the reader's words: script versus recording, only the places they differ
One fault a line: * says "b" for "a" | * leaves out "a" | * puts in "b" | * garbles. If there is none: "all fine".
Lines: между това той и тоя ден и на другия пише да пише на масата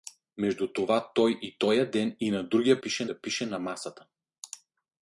all fine